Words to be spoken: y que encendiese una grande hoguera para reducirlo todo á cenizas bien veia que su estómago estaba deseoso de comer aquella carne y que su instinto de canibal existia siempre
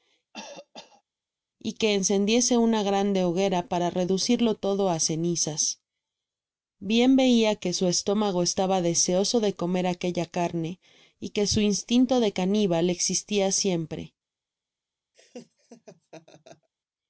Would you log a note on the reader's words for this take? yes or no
no